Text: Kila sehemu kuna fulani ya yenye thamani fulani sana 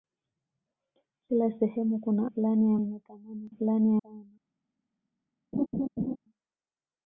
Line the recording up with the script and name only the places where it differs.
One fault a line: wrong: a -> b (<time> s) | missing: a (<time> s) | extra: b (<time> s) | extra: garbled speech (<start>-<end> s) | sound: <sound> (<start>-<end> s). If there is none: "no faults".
sound: laugh (5.5-6.2 s)